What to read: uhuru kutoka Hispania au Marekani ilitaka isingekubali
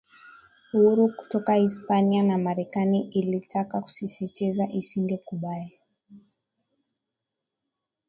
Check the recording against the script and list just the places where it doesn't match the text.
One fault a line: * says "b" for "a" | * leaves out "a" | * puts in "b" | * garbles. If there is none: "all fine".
* says "na" for "au"
* puts in "kusisitiza"